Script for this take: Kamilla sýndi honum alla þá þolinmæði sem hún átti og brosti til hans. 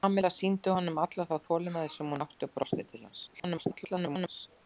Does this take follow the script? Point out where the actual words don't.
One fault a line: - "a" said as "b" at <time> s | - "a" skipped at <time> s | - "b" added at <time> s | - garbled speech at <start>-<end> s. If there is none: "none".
- garbled speech at 3.3-4.5 s